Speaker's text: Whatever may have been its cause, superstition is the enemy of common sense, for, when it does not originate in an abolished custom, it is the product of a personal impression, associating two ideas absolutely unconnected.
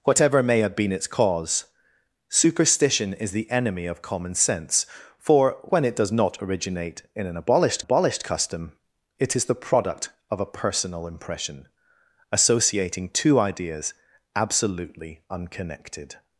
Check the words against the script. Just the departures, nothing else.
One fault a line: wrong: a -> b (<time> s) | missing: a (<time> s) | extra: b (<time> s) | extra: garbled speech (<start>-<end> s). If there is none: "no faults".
extra: abolished (7.8 s)